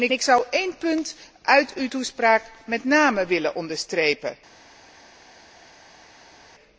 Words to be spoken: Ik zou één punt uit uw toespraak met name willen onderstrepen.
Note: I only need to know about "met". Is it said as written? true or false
true